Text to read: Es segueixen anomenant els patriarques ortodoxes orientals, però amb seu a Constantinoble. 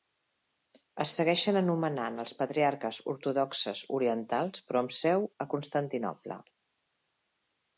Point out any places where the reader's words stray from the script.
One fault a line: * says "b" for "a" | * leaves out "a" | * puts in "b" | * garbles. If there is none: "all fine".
all fine